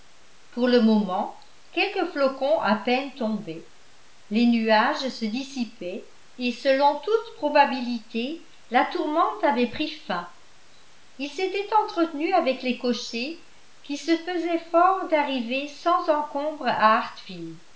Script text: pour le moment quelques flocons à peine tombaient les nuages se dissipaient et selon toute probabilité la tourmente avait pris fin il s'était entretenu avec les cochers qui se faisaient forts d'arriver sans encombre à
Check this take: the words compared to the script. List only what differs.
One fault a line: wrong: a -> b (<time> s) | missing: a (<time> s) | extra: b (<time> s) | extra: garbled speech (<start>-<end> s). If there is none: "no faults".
no faults